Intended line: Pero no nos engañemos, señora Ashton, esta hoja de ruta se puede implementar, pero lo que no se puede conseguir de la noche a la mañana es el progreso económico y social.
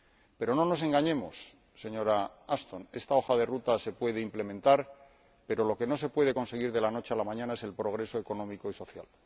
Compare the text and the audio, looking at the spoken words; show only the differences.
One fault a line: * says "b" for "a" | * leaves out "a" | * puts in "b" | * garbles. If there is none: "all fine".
all fine